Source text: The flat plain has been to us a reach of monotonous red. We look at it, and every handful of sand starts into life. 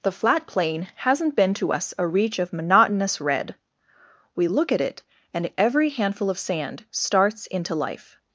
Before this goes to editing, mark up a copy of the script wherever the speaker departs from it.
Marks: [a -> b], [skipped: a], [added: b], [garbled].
The flat plain [has -> hasn't] been to us a reach of monotonous red. We look at it, and every handful of sand starts into life.